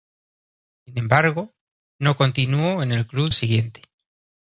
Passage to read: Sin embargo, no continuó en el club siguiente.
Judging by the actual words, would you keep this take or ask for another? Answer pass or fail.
pass